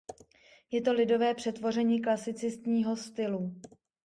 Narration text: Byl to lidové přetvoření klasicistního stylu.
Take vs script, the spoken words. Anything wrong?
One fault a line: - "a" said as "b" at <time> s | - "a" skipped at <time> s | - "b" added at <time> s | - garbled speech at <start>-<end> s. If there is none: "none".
- "Byl" said as "Je" at 0.7 s